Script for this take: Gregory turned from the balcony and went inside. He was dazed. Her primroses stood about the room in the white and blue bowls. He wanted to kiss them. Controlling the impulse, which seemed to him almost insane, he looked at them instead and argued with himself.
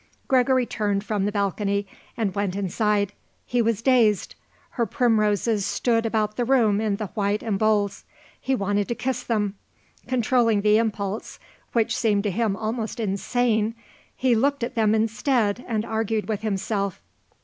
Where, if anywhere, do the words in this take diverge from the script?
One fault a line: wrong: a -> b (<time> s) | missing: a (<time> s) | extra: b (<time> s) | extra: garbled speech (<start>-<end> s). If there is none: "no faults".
missing: blue (7.6 s)